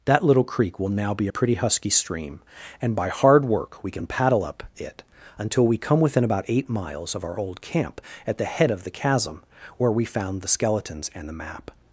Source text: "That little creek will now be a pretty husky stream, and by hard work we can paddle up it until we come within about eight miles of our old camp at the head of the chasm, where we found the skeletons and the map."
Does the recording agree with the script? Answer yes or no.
yes